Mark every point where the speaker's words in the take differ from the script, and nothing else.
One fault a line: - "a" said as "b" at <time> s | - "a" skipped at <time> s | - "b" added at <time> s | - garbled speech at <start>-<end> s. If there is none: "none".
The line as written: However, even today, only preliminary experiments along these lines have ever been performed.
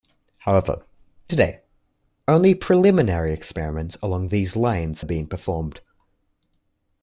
- "even" skipped at 0.8 s
- "have ever" skipped at 5.0 s